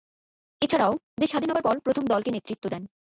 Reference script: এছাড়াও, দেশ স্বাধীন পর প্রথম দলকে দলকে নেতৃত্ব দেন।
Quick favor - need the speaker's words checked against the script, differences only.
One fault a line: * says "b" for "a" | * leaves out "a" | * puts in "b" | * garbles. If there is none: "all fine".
* puts in "হবার"
* leaves out "দলকে"